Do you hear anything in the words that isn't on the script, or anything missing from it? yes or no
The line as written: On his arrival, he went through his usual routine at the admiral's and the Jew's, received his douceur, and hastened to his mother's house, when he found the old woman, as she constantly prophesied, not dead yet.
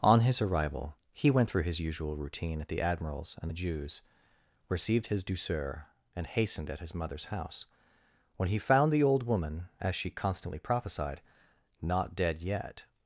yes